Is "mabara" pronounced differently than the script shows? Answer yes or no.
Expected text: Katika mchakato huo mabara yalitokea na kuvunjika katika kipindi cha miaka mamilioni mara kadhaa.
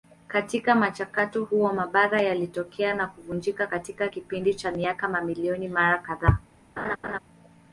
no